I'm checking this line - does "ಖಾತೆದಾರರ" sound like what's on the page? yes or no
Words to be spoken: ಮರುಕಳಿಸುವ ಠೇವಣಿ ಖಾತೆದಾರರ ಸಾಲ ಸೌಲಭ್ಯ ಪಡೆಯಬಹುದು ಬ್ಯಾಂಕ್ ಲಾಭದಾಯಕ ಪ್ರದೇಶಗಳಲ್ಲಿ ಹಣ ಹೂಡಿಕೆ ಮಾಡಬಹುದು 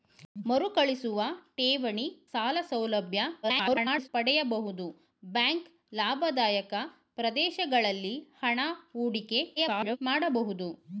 no